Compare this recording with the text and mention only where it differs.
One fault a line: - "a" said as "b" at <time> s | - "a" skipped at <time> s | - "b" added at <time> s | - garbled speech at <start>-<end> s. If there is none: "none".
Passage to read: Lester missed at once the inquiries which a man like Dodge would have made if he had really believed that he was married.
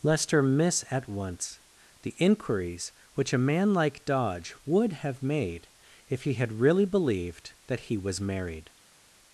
- "missed" said as "miss" at 0.4 s